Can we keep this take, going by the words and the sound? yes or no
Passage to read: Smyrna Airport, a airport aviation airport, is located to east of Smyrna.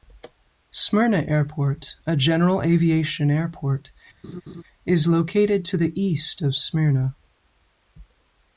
no